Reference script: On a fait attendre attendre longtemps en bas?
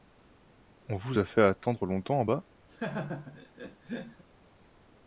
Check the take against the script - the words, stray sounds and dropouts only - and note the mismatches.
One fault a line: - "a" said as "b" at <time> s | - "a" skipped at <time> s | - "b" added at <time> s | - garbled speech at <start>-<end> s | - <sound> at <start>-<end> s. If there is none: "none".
- "vous" added at 0.9 s
- "attendre" skipped at 1.8 s
- laugh at 2.7-4.2 s